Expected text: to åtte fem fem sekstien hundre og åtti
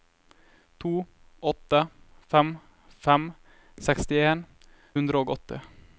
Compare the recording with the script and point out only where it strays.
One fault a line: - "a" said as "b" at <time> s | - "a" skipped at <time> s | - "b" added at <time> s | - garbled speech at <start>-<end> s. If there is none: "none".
none